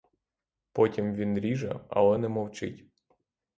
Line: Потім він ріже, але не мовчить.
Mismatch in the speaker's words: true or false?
false